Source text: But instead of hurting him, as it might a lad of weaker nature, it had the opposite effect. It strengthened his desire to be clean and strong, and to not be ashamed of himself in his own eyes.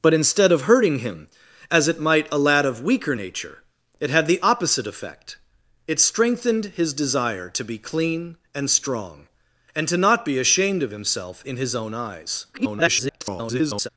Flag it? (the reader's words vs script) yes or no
yes